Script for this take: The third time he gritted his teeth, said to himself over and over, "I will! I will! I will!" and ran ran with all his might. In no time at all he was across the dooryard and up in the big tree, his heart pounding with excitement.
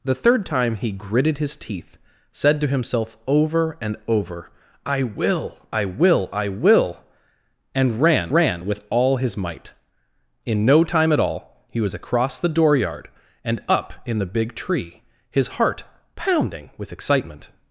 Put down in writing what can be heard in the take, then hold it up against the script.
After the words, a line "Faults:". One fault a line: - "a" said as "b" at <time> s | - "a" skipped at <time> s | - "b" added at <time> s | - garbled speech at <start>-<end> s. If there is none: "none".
The third time he gritted his teeth, said to himself over and over, "I will! I will! I will!" and ran ran with all his might. In no time at all he was across the dooryard and up in the big tree, his heart pounding with excitement.
Faults:
none